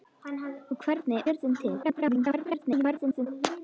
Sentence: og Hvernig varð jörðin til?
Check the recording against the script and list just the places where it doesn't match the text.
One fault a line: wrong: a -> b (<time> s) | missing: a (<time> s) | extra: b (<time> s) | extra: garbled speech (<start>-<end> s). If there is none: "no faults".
missing: varð (1.2 s)
extra: garbled speech (1.8-3.3 s)